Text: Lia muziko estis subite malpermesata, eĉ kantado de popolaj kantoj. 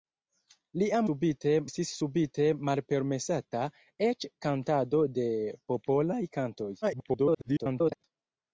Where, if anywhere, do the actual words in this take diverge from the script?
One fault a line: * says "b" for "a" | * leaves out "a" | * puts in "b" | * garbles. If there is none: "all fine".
* says "subite" for "muziko"
* garbles